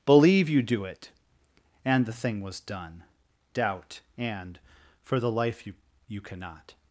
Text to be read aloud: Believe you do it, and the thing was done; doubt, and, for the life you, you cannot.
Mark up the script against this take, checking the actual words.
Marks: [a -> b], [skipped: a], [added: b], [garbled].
Believe you do it, and the thing was done; doubt, and, for the life you, you cannot.